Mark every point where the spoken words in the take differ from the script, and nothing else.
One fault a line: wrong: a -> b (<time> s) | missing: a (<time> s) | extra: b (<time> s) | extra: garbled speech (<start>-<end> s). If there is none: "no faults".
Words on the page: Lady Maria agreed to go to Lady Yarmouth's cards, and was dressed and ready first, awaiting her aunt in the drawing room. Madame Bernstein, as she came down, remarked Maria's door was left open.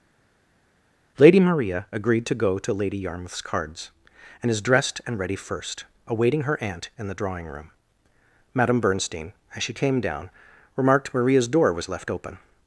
wrong: was -> is (4.5 s)